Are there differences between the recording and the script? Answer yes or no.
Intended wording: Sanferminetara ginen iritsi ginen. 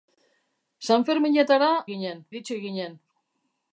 no